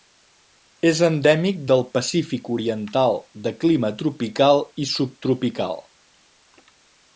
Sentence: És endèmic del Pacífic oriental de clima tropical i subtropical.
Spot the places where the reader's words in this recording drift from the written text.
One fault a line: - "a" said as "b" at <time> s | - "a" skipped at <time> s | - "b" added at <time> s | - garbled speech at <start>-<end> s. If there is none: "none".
none